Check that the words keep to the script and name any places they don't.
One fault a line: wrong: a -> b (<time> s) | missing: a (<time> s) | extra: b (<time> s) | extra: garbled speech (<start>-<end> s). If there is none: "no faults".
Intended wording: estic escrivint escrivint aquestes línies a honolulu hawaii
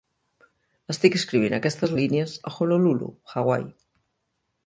missing: escrivint (1.6 s)